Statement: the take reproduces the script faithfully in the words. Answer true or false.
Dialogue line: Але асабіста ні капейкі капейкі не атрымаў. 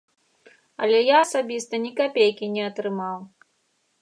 false